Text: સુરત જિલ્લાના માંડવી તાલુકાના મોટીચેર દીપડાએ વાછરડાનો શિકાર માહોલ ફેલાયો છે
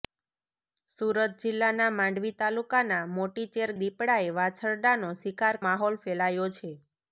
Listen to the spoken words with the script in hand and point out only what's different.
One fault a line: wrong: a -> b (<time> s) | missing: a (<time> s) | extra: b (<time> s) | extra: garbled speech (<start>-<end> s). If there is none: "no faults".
no faults